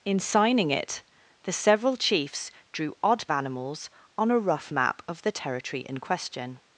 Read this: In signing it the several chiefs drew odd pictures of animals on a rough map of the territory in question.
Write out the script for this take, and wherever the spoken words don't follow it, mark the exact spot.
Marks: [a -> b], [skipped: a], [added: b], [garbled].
In signing it the several chiefs drew odd [skipped: pictures of] animals on a rough map of the territory in question.